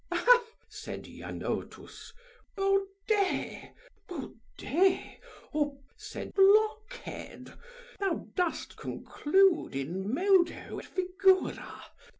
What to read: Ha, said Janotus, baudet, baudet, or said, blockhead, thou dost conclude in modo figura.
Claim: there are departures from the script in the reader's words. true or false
false